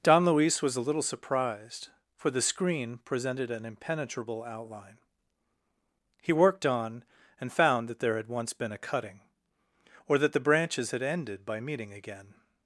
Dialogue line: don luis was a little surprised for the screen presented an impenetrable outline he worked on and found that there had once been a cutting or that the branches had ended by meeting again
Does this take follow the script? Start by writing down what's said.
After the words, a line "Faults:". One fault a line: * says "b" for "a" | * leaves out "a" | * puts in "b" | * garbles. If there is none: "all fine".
don luis was a little surprised for the screen presented an impenetrable outline he worked on and found that there had once been a cutting or that the branches had ended by meeting again
Faults:
all fine